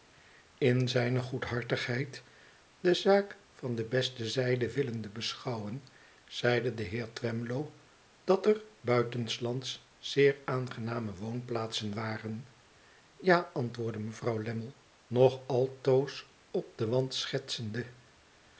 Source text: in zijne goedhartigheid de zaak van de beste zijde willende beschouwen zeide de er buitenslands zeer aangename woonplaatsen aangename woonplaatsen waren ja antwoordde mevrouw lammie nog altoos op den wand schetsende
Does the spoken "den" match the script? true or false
true